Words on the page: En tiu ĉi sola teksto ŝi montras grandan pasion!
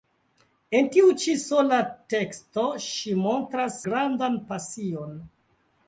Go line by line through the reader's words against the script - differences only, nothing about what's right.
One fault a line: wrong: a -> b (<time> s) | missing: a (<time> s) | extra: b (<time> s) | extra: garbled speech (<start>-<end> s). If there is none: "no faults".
no faults